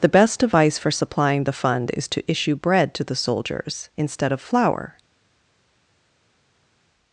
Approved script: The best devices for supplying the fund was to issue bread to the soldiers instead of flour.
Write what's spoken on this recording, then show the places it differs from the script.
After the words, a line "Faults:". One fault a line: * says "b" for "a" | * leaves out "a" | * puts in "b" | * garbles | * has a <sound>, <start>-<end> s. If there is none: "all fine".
The best device for supplying the fund is to issue bread to the soldiers instead of flour.
Faults:
* says "device" for "devices"
* says "is" for "was"